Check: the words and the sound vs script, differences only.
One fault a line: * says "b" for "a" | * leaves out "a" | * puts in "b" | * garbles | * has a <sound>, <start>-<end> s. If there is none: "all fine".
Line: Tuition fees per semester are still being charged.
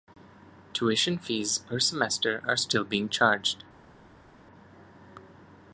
all fine